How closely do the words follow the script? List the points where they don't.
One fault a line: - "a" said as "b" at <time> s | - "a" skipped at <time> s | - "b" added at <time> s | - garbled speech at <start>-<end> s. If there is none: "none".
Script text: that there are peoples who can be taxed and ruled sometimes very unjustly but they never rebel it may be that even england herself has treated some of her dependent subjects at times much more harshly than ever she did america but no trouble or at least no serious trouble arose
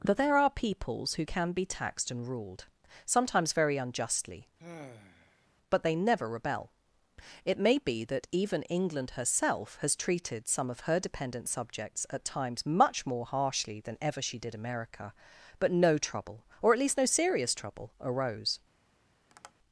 none